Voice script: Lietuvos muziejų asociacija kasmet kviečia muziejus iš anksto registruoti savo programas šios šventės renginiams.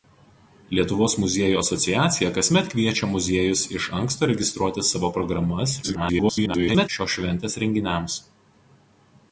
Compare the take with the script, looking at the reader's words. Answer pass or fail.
fail